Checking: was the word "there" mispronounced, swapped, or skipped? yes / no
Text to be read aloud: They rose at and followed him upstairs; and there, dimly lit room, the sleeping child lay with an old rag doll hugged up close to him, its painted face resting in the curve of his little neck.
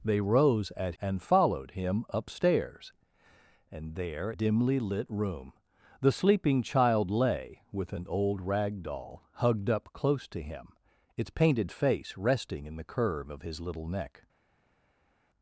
no